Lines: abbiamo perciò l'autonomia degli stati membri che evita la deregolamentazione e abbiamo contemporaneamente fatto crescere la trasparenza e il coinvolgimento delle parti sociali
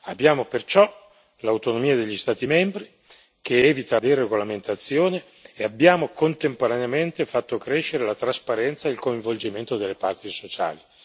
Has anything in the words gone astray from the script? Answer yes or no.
yes